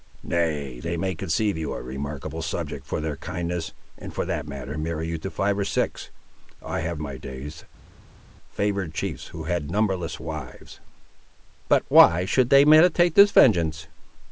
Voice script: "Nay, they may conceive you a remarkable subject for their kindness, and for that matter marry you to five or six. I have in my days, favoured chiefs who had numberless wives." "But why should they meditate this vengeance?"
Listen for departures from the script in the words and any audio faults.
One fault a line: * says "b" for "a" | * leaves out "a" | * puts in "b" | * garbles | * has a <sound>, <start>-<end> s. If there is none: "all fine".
all fine